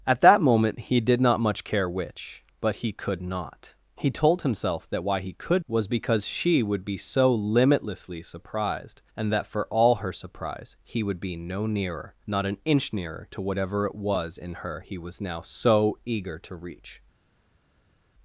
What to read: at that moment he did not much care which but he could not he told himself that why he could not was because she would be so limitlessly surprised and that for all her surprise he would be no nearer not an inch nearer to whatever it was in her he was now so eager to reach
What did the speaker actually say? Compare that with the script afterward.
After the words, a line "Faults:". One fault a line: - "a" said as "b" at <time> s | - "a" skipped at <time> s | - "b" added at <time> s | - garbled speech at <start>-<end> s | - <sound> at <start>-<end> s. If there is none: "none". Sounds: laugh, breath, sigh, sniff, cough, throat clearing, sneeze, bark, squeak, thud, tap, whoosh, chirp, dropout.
at that moment he did not much care which but he could not he told himself that why he could was because she would be so limitlessly surprised and that for all her surprise he would be no nearer not an inch nearer to whatever it was in her he was now so eager to reach
Faults:
- "not" skipped at 5.7 s